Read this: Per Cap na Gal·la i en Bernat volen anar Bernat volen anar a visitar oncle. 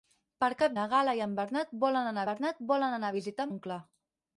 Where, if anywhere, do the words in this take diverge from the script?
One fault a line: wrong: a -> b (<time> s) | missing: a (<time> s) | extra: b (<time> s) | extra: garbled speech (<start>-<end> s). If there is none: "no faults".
no faults